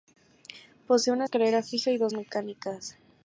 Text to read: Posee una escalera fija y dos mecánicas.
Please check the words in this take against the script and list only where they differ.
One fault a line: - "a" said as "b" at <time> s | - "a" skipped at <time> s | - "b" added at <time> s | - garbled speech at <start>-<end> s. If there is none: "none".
none